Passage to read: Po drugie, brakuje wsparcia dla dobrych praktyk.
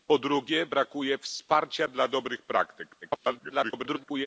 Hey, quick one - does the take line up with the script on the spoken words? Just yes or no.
no